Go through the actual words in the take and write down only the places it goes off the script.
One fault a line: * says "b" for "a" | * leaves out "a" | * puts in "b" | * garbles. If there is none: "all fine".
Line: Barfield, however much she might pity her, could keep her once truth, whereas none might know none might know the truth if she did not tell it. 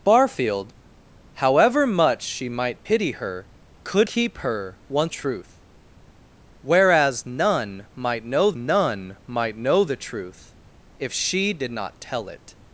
all fine